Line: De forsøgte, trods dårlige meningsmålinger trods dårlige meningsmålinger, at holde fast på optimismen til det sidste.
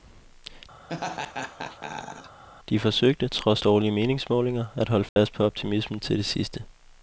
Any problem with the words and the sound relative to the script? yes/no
yes